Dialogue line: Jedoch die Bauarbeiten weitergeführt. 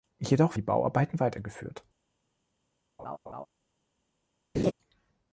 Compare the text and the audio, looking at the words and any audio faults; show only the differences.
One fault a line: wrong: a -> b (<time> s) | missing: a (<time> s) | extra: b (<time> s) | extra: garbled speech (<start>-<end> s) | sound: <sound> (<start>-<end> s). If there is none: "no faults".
sound: laugh (3.0-3.5 s)
sound: laugh (4.5-4.7 s)